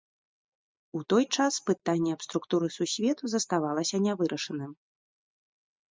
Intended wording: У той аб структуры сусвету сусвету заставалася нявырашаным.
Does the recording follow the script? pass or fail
fail